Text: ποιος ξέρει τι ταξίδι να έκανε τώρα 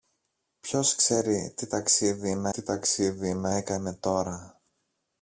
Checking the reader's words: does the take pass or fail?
fail